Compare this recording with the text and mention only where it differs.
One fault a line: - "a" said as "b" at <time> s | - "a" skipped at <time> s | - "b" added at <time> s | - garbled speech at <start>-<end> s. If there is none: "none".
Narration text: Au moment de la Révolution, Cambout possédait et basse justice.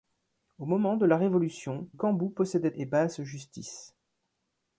none